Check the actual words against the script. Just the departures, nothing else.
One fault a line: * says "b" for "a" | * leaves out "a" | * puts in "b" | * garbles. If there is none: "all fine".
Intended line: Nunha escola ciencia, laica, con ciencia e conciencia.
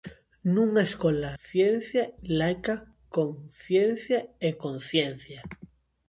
all fine